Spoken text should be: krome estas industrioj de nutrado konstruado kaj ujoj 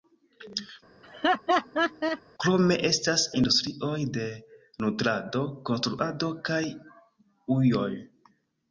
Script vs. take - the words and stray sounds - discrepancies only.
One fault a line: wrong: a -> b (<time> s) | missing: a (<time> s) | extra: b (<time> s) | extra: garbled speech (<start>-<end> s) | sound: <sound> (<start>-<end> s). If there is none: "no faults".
sound: laugh (1.0-2.2 s)